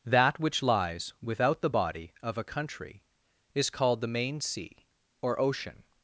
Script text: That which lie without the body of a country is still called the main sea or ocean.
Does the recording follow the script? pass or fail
fail